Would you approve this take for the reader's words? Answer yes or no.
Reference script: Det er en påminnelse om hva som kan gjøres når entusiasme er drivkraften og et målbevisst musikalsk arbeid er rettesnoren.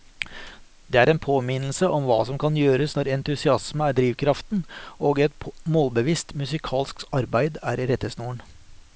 yes